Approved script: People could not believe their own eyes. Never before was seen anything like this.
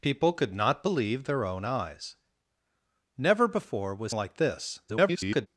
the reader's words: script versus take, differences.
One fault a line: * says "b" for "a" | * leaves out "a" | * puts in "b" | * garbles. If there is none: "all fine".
* leaves out "seen anything"
* garbles